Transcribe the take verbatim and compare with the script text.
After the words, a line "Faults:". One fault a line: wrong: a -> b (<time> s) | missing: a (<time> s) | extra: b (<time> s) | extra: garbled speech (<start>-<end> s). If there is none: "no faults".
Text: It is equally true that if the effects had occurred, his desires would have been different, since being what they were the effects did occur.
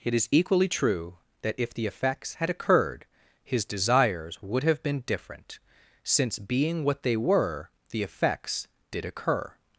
It is equally true that if the effects had occurred, his desires would have been different, since being what they were the effects did occur.
Faults:
no faults